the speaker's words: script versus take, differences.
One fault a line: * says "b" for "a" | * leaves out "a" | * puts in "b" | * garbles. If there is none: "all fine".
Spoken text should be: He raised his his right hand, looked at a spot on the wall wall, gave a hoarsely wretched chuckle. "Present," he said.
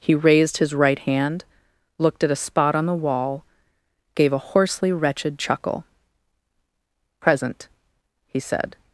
* leaves out "his"
* leaves out "wall"